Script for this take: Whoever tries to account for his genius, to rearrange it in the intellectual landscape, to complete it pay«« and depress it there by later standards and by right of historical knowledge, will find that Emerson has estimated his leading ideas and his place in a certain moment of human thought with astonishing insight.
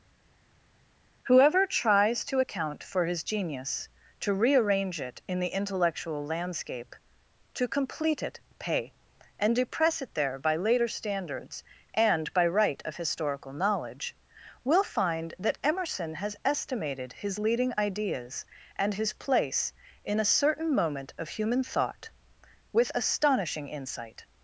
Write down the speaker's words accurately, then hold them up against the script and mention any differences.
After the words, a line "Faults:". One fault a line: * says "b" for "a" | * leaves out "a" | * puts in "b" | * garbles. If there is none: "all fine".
Whoever tries to account for his genius, to rearrange it in the intellectual landscape, to complete it pay«« and depress it there by later standards and by right of historical knowledge, will find that Emerson has estimated his leading ideas and his place in a certain moment of human thought with astonishing insight.
Faults:
all fine